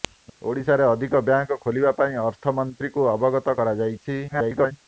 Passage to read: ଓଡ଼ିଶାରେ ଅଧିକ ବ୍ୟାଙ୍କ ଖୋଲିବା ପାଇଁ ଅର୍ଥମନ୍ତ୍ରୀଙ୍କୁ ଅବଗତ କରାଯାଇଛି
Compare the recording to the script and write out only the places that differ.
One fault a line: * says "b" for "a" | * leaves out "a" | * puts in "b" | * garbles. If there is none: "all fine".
* garbles